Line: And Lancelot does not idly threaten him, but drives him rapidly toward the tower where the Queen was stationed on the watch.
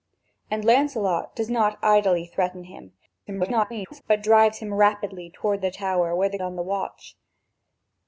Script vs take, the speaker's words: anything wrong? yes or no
yes